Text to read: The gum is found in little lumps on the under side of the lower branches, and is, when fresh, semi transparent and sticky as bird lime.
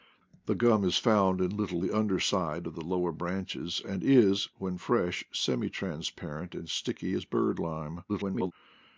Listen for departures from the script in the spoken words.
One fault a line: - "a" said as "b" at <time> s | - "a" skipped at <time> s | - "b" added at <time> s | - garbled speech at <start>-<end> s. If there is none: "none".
- "lumps on" skipped at 1.8 s
- garbled speech at 8.1-8.5 s